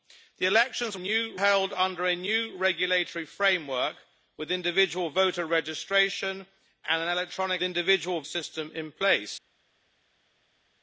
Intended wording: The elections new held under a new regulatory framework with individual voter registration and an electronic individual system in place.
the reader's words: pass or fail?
pass